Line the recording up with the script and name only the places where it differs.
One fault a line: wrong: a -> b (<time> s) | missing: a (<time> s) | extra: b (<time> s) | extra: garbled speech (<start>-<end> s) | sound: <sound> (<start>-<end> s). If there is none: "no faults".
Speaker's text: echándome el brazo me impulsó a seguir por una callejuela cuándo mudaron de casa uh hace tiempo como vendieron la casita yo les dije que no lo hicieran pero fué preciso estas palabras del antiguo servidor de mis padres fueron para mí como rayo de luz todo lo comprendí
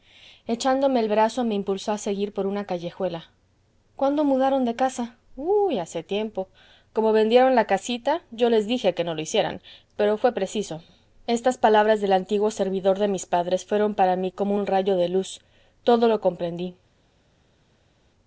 extra: un (14.5 s)